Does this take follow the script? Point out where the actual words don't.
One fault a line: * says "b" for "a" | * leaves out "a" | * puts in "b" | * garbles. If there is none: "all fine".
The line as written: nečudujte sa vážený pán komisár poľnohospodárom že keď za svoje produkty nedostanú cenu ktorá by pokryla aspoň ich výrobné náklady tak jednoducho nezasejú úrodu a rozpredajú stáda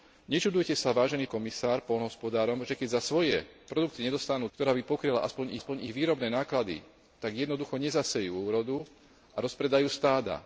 * leaves out "pán"
* leaves out "cenu"
* puts in "aspoň"